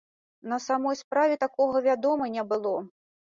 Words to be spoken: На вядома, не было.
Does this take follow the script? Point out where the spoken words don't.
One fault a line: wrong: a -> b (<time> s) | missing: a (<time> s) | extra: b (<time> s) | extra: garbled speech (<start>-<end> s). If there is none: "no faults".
extra: самой справе такога (0.7 s)